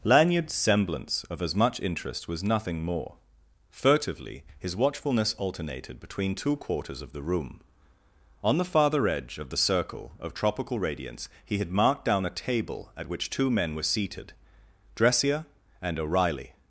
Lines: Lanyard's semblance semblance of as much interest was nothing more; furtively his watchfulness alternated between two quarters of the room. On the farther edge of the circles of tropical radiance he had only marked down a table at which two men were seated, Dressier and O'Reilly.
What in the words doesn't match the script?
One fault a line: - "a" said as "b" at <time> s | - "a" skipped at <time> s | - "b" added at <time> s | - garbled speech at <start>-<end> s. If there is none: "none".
- "semblance" skipped at 1.2 s
- "circles" said as "circle" at 9.6 s
- "only" skipped at 11.7 s